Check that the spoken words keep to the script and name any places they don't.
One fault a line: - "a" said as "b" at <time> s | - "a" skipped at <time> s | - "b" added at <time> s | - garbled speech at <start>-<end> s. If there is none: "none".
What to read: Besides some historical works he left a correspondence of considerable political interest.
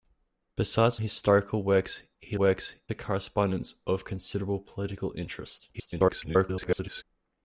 - "some" skipped at 1.0 s
- "left" said as "works" at 2.4 s
- garbled speech at 5.7-7.0 s